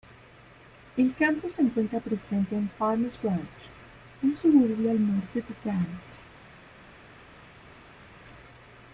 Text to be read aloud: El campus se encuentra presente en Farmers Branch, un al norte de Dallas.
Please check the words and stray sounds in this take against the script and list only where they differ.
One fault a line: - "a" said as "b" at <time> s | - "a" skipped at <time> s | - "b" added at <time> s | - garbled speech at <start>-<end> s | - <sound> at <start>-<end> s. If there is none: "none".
- "suburbio" added at 4.4 s